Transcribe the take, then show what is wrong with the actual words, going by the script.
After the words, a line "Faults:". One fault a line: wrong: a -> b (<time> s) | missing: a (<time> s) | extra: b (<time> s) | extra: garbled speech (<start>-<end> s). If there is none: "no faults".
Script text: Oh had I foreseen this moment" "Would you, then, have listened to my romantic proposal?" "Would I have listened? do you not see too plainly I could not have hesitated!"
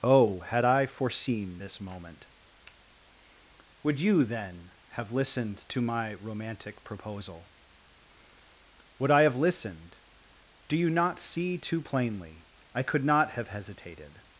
Oh had I foreseen this moment" "Would you, then, have listened to my romantic proposal?" "Would I have listened? do you not see too plainly I could not have hesitated!"
Faults:
no faults